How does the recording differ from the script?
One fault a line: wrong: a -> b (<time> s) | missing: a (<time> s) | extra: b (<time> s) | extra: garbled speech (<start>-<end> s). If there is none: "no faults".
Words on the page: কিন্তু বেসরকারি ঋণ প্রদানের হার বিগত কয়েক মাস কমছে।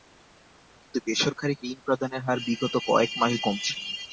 no faults